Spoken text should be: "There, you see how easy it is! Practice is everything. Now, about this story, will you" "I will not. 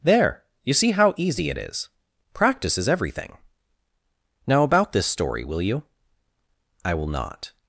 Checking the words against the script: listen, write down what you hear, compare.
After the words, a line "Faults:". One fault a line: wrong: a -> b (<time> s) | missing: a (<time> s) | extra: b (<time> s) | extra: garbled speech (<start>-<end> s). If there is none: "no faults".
"There, you see how easy it is! Practice is everything. Now, about this story, will you" "I will not.
Faults:
no faults